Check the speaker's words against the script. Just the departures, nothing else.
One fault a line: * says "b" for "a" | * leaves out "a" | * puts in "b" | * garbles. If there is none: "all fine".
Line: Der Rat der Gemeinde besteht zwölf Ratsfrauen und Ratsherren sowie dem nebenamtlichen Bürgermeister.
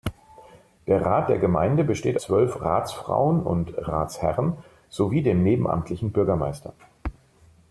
all fine